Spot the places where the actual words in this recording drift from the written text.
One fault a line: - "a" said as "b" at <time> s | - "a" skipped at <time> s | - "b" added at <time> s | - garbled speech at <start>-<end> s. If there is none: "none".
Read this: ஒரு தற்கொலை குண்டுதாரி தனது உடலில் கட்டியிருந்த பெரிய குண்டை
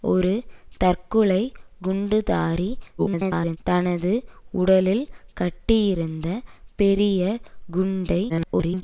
- garbled speech at 3.0-3.6 s
- garbled speech at 8.3-8.8 s